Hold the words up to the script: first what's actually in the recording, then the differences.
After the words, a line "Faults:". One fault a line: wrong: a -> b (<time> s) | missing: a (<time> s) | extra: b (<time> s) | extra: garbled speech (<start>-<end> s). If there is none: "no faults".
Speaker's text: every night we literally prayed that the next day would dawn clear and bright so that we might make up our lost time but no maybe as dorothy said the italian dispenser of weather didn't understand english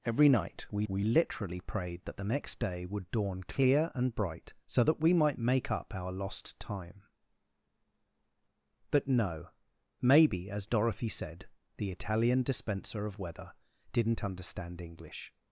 every night we we literally prayed that the next day would dawn clear and bright so that we might make up our lost time but no maybe as dorothy said the italian dispenser of weather didn't understand english
Faults:
extra: we (0.9 s)